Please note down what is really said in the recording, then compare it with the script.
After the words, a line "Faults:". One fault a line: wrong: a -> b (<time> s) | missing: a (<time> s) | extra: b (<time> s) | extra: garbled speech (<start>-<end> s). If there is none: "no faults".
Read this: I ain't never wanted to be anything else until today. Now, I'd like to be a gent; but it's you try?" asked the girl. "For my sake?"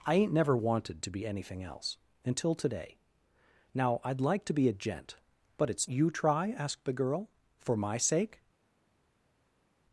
I ain't never wanted to be anything else until today. Now, I'd like to be a gent; but it's you try?" asked the girl. "For my sake?"
Faults:
no faults